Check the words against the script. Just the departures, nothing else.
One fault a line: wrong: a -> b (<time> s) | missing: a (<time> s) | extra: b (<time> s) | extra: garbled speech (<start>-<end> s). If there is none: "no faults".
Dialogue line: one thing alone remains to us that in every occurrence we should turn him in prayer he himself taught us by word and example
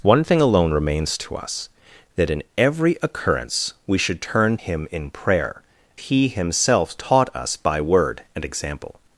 no faults